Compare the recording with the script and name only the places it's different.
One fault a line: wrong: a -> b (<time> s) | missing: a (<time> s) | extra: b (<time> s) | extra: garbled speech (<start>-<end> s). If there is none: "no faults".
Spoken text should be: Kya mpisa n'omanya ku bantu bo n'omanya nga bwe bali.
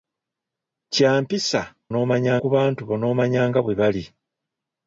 no faults